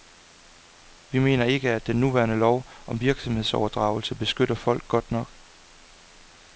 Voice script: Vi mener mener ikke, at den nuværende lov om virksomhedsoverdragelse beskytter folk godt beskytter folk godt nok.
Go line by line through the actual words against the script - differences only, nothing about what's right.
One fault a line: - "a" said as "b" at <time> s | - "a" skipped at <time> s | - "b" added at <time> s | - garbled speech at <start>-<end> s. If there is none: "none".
- "mener" skipped at 1.4 s
- "beskytter folk godt" skipped at 5.1 s